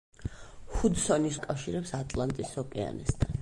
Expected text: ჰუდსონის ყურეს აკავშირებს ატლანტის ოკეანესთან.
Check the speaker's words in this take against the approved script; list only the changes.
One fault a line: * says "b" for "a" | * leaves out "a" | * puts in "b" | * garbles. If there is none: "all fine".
* leaves out "ყურეს"